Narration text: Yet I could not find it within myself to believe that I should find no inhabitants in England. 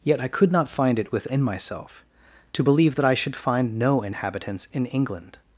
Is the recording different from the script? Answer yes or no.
no